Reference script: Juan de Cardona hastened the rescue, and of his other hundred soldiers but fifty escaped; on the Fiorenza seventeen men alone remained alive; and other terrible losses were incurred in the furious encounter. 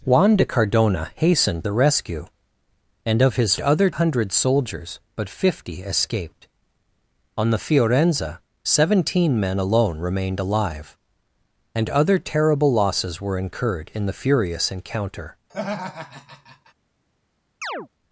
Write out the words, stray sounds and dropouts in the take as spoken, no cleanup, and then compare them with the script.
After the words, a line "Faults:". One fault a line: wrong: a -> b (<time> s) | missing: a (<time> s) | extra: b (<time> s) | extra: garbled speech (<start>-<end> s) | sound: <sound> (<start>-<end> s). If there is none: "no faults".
Juan de Cardona hastened the rescue, and of his other hundred soldiers but fifty escaped; on the Fiorenza seventeen men alone remained alive; and other terrible losses were incurred in the furious encounter.
Faults:
sound: laugh (15.5-16.7 s)
sound: chirp (17.6-17.9 s)